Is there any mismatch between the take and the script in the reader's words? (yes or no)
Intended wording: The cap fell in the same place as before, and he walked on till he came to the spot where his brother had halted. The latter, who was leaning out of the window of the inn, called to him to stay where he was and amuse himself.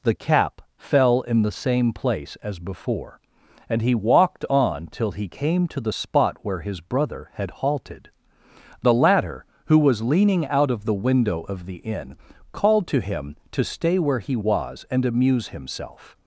no